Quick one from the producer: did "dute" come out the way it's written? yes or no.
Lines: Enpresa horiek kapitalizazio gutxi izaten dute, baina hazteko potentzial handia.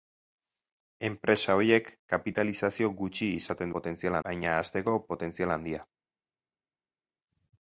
no